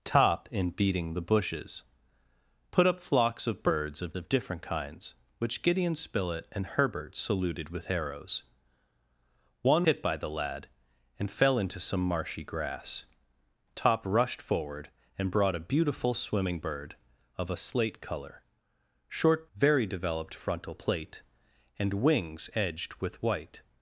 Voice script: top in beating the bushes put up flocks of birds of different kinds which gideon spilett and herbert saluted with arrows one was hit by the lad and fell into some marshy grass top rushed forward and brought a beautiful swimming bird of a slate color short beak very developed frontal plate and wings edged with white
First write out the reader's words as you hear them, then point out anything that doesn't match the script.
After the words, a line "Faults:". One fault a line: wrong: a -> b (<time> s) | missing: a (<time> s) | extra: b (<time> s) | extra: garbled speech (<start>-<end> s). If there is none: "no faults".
top in beating the bushes put up flocks of birds of of different kinds which gideon spilett and herbert saluted with arrows one hit by the lad and fell into some marshy grass top rushed forward and brought a beautiful swimming bird of a slate color short very developed frontal plate and wings edged with white
Faults:
extra: of (4.1 s)
missing: was (9.9 s)
missing: beak (19.5 s)